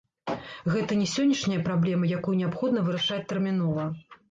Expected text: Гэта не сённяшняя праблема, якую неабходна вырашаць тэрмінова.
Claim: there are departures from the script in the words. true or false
false